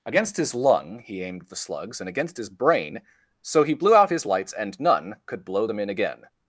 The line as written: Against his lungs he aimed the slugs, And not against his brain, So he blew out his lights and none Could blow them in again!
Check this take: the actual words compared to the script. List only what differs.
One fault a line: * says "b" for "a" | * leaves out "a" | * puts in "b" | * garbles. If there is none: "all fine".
* says "lung" for "lungs"
* leaves out "not"